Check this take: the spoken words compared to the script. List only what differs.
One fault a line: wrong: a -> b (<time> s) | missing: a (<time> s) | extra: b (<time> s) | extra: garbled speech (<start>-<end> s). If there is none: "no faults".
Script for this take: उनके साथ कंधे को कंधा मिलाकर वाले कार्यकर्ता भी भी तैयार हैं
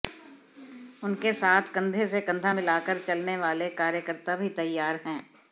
wrong: को -> से (2.1 s)
extra: चलने (3.0 s)
missing: भी (4.5 s)